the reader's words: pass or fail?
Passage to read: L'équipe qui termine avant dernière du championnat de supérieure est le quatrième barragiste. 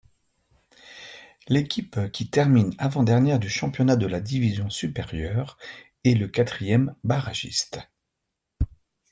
fail